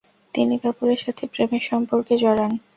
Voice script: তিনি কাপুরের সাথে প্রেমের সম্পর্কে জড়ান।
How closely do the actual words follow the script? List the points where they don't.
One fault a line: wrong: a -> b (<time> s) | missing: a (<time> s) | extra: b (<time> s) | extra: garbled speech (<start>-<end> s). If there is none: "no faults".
no faults